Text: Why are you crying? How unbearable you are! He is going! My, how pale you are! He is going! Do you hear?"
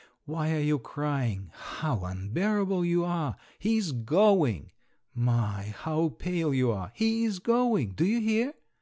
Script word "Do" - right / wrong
right